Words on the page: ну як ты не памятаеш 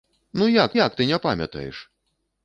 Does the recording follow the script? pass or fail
fail